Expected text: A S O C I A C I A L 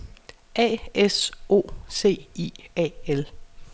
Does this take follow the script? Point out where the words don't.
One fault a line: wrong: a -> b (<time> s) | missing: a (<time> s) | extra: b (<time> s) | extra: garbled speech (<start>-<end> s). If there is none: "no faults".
missing: C I A (2.9 s)